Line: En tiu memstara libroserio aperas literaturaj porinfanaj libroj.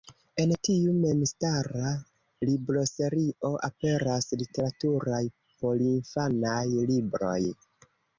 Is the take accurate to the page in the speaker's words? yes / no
yes